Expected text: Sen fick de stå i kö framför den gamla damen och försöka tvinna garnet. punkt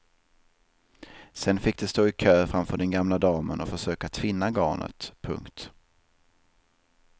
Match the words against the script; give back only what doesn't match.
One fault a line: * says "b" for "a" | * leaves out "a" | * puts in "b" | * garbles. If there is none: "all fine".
all fine